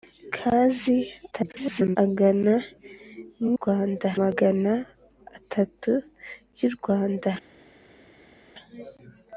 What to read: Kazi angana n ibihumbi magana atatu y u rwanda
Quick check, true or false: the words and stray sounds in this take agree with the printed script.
false